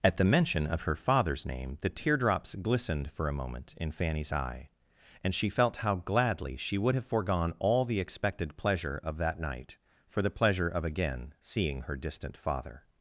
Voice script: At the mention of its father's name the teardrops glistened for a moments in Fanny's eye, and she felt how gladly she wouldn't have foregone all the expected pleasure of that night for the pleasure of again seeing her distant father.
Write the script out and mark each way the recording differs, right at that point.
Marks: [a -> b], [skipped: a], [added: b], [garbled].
At the mention of [its -> her] father's name the teardrops glistened for a [moments -> moment] in Fanny's eye, and she felt how gladly she [wouldn't -> would] have foregone all the expected pleasure of that night for the pleasure of again seeing her distant father.